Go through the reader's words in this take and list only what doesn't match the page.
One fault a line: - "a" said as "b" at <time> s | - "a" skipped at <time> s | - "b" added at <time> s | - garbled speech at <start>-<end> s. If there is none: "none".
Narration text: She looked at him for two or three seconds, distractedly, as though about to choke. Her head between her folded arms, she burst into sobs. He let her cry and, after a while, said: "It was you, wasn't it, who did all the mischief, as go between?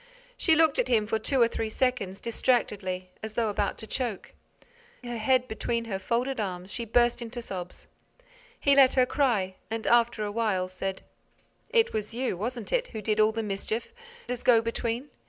none